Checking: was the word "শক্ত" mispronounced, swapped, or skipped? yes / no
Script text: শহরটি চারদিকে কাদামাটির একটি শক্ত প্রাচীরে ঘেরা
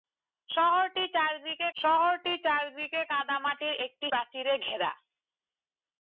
yes